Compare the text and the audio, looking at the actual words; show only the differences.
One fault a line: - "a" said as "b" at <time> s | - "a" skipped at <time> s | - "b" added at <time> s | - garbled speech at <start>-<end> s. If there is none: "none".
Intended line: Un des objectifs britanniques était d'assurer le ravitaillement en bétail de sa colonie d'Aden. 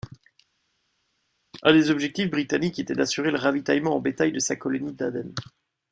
none